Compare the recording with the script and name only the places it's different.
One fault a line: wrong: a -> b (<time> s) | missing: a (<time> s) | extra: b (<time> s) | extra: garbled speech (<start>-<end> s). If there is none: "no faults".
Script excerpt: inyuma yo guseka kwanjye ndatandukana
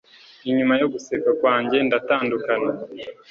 no faults